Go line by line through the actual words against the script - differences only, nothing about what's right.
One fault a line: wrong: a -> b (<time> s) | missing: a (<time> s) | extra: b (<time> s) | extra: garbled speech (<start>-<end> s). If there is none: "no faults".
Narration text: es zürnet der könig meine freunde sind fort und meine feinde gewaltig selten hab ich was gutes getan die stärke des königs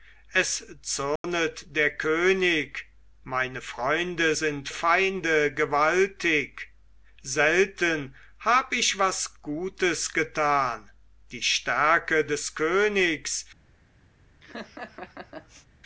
missing: fort und meine (4.7 s)